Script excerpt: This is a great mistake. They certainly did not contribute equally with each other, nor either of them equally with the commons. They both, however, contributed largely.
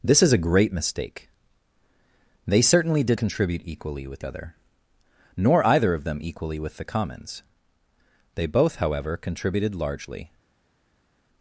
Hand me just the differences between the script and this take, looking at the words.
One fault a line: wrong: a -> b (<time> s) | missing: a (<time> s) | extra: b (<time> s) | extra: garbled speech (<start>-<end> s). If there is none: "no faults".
missing: not (3.2 s)
missing: each (4.3 s)